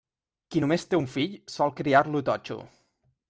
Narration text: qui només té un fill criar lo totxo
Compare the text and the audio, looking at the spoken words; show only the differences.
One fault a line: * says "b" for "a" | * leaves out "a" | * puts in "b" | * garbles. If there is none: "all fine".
* puts in "sol"